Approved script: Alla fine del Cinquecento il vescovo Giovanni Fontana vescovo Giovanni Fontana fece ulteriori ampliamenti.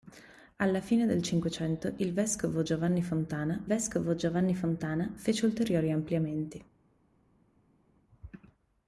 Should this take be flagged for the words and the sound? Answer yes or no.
no